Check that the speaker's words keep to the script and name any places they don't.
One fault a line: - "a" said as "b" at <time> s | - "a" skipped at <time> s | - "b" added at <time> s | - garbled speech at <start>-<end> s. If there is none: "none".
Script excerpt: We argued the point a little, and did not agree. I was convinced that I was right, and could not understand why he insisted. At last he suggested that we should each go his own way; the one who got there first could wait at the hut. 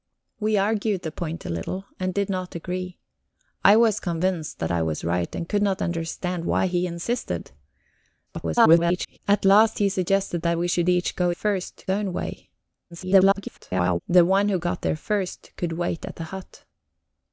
- garbled speech at 8.3-9.2 s
- "his" said as "first" at 11.3 s
- garbled speech at 12.9-14.0 s